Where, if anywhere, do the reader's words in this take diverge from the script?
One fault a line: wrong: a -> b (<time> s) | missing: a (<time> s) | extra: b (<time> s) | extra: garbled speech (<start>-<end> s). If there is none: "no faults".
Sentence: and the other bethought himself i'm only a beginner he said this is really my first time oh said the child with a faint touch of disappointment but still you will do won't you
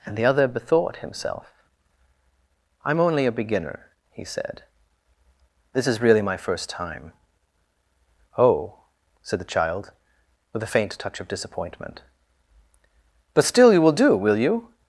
wrong: won't -> will (14.2 s)